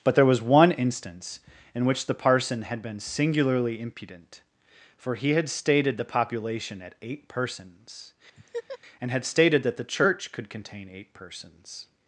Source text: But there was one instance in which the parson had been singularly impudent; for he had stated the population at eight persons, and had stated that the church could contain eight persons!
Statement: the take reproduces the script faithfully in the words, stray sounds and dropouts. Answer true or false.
false